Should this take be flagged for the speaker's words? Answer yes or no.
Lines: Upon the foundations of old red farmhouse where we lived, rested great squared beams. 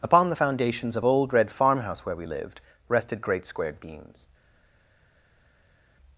no